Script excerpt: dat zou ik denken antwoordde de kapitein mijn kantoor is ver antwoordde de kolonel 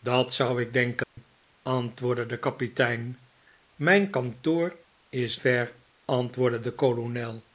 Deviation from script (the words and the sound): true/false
true